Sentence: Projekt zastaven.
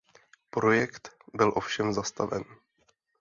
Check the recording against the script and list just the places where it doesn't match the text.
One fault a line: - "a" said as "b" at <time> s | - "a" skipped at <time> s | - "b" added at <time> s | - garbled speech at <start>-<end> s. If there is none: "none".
- "byl ovšem" added at 1.3 s